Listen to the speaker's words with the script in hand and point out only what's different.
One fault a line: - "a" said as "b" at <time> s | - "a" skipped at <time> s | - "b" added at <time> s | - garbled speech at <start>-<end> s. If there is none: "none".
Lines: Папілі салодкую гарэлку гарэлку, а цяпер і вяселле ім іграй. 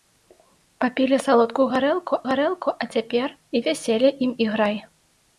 none